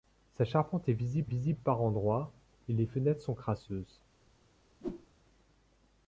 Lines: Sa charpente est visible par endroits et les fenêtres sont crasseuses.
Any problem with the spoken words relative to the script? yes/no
yes